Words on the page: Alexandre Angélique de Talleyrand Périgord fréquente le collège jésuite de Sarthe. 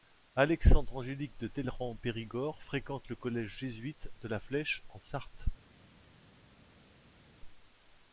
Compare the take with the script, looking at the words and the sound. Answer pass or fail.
fail